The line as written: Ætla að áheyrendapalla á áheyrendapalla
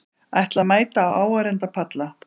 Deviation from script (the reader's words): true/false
true